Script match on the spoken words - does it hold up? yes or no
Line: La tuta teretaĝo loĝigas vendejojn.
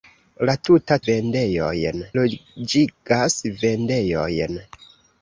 no